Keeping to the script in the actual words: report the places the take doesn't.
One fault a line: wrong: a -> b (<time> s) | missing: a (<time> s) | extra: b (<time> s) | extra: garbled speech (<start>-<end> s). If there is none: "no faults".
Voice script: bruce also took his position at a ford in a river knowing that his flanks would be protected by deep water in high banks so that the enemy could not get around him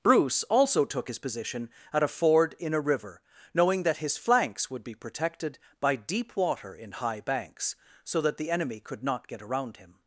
no faults